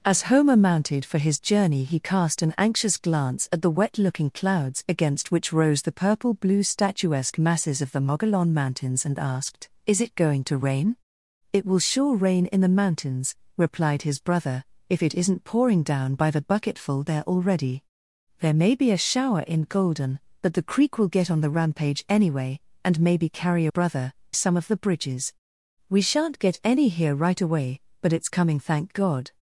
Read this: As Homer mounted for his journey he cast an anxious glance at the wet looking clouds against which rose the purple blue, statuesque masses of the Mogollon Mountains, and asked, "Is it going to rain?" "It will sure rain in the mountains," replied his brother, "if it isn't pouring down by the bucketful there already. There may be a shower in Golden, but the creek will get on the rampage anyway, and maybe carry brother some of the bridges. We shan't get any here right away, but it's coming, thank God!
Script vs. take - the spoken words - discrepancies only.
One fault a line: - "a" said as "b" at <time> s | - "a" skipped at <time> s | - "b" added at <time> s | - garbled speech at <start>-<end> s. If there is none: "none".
none